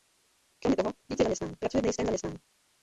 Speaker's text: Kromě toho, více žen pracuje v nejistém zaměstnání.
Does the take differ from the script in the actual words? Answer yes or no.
yes